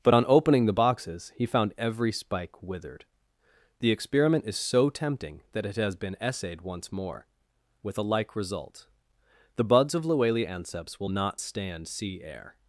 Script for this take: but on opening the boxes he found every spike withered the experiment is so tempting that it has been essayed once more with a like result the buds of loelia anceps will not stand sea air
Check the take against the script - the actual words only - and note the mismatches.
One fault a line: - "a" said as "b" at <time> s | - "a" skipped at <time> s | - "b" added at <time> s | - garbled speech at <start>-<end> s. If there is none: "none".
none